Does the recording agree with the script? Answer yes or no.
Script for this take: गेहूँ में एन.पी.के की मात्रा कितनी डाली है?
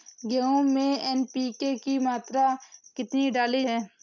yes